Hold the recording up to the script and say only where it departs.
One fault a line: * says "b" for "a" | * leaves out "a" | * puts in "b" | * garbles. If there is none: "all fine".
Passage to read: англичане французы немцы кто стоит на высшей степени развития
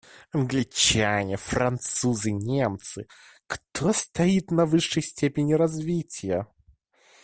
all fine